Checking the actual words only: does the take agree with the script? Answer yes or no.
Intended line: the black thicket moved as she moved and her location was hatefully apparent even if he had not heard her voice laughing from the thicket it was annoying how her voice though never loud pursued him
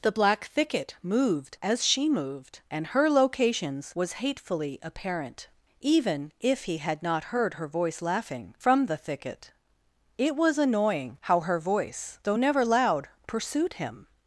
no